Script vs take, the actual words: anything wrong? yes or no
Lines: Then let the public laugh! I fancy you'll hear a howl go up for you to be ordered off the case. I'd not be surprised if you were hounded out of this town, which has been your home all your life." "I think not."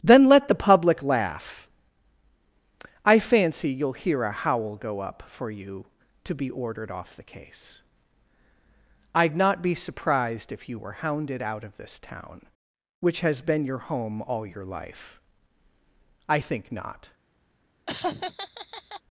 no